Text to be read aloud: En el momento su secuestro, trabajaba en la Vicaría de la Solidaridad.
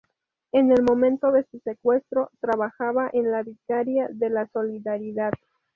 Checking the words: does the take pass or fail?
fail